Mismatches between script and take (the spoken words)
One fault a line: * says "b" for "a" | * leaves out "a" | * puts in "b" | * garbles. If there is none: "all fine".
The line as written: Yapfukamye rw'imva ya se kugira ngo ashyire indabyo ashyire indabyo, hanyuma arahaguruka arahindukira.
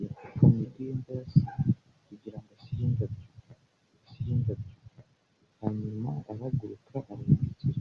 all fine